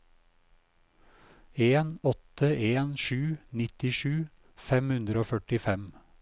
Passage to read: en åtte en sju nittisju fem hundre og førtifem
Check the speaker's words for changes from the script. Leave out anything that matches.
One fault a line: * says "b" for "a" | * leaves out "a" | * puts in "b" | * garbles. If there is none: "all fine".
all fine